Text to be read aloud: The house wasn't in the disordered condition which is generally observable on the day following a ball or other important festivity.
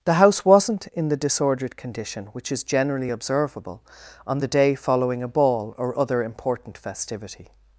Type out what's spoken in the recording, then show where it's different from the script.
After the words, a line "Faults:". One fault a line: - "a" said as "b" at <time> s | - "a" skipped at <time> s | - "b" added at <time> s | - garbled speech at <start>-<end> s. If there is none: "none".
The house wasn't in the disordered condition which is generally observable on the day following a ball or other important festivity.
Faults:
none